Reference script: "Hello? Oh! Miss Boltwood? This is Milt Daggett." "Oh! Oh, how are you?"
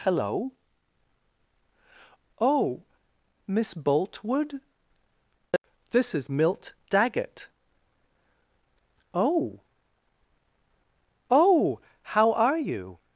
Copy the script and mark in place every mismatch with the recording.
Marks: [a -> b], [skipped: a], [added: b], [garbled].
"Hello? Oh! Miss Boltwood? This is Milt Daggett." "Oh! Oh, how are you?"